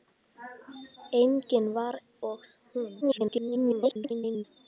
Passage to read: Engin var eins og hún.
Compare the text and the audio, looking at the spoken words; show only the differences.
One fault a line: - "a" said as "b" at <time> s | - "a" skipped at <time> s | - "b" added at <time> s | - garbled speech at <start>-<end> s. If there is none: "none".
- "eins" skipped at 1.9 s
- garbled speech at 3.0-4.4 s